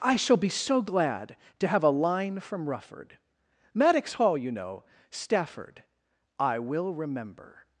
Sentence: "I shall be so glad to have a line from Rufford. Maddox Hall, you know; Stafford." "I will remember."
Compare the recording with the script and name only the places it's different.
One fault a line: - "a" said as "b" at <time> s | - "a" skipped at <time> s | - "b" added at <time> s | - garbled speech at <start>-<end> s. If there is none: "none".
none